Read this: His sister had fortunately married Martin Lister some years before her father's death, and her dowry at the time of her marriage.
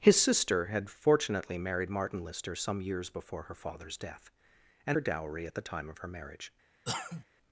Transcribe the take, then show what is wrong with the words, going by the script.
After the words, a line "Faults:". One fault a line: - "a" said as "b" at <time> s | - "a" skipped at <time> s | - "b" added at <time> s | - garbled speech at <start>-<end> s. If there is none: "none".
His sister had fortunately married Martin Lister some years before her father's death, and her dowry at the time of her marriage.
Faults:
none